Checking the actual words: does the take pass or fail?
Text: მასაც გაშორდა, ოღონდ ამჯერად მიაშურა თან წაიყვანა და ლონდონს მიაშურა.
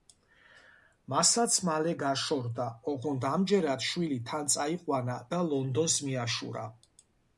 fail